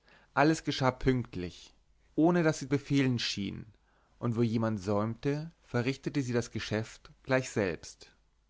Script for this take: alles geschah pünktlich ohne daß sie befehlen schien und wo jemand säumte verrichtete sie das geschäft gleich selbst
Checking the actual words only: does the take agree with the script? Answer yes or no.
yes